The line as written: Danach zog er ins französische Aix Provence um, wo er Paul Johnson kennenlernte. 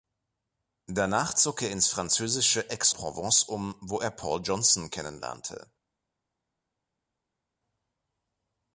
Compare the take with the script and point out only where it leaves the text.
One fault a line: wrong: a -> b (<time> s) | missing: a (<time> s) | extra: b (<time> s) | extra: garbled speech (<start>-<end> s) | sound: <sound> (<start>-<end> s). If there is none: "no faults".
no faults